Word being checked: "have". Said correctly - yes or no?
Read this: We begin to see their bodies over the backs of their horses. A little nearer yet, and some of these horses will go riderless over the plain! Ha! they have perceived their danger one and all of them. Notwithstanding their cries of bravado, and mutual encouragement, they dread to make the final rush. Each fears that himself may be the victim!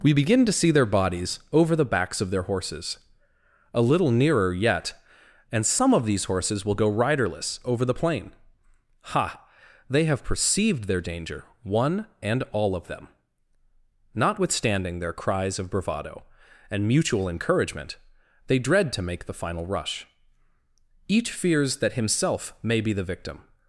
yes